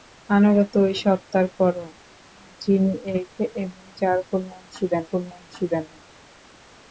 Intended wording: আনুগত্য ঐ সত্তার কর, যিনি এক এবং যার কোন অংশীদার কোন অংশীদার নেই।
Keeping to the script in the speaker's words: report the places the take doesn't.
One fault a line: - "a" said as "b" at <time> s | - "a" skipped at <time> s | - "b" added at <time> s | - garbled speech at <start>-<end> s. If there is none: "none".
none